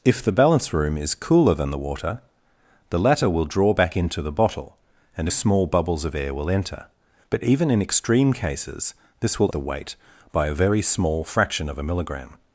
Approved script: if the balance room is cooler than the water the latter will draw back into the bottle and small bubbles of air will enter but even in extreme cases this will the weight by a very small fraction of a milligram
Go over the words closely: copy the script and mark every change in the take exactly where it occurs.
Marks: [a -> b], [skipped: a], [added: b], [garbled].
if the balance room is cooler than the water the latter will draw back into the bottle and small bubbles of air will enter but even in extreme cases this will the weight by a very small fraction of a milligram